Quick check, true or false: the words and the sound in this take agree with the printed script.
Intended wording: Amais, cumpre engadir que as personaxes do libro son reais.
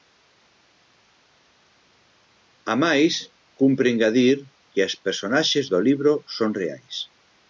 true